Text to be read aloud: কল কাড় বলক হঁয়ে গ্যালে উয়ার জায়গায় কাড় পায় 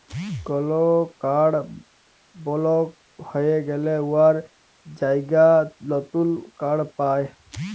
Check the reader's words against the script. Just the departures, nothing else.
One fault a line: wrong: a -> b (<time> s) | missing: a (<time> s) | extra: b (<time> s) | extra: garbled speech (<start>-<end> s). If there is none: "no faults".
extra: লতুল (5.9 s)